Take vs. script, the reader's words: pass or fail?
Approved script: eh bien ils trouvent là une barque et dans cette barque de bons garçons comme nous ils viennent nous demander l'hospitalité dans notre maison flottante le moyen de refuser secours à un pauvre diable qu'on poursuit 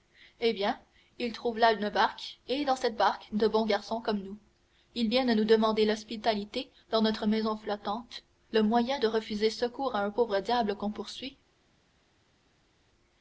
pass